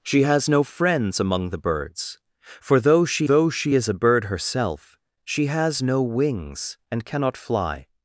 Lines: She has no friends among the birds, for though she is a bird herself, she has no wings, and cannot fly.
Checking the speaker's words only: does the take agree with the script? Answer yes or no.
no